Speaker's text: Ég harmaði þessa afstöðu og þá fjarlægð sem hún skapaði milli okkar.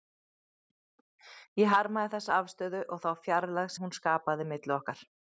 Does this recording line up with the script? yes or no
no